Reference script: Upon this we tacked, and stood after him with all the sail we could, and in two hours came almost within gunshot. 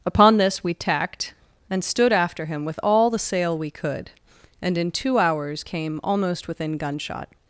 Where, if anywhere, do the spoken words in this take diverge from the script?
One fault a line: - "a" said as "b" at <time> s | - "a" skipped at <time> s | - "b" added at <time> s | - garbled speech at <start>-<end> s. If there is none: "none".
none